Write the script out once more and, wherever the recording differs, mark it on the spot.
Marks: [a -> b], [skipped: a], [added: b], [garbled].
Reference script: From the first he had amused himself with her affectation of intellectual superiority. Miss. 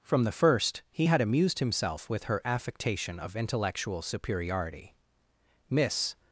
From the first he had amused himself with her affectation of intellectual superiority. Miss.